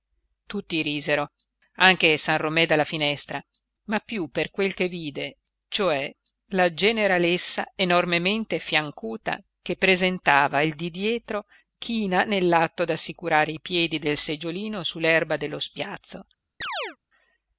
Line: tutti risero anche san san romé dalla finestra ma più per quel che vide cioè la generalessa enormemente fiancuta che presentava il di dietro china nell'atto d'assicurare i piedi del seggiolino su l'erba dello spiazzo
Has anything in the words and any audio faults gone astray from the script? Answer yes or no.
yes